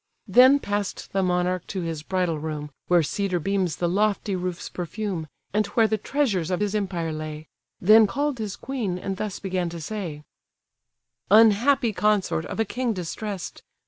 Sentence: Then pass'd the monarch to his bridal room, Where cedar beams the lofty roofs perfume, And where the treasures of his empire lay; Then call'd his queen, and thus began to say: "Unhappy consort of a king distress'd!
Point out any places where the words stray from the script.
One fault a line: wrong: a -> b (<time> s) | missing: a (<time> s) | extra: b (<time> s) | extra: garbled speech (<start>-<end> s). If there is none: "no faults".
no faults